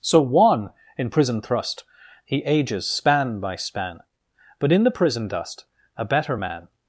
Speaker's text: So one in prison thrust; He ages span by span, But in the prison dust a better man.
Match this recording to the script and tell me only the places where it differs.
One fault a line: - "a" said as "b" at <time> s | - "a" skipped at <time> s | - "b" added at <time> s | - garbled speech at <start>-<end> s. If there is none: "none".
none